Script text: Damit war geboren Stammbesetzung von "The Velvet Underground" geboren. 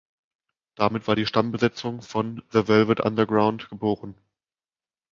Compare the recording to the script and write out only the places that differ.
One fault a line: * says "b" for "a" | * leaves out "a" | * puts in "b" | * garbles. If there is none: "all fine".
* says "die" for "geboren"